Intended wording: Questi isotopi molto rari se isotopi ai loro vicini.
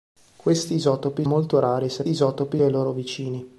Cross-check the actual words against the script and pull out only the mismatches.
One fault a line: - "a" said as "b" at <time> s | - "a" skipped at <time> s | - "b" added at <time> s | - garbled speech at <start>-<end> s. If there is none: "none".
none